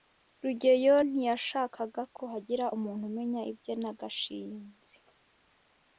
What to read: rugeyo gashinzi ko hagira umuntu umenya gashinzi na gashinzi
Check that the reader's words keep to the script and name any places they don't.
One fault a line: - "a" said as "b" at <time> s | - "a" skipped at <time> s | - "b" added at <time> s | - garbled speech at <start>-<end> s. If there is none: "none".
- "gashinzi" said as "ntiyashakaga" at 1.1 s
- "gashinzi" said as "ibye" at 3.5 s